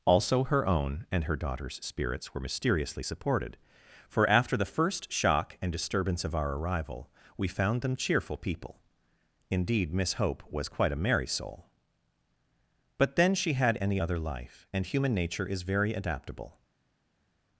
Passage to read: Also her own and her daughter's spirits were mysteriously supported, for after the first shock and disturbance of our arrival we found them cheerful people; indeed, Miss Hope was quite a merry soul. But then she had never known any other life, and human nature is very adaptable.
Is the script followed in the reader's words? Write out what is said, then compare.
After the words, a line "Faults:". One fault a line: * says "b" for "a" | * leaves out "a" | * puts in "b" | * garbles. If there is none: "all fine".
Also her own and her daughter's spirits were mysteriously supported, for after the first shock and disturbance of our arrival we found them cheerful people; indeed, Miss Hope was quite a merry soul. But then she had any other life, and human nature is very adaptable.
Faults:
* leaves out "never known"